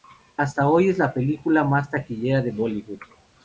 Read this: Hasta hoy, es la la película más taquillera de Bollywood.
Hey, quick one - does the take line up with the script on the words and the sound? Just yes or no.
no